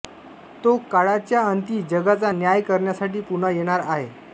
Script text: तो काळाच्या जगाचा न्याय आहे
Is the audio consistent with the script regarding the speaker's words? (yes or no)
no